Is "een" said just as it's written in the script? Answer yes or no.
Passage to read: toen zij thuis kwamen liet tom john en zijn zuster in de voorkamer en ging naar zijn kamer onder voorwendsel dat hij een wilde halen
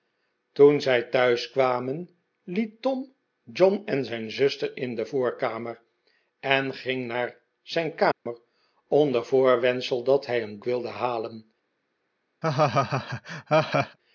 yes